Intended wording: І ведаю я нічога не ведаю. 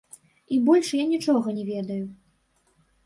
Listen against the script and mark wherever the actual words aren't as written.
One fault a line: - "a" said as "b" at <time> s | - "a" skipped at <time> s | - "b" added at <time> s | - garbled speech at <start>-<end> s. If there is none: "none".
- "ведаю" said as "больш" at 0.7 s